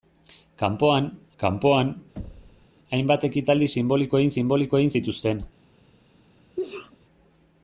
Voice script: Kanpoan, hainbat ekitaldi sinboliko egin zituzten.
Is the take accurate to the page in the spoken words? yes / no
no